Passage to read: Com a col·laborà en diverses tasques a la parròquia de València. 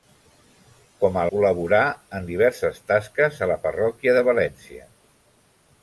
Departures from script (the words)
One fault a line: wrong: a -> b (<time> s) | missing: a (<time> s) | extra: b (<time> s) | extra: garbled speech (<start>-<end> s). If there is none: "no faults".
no faults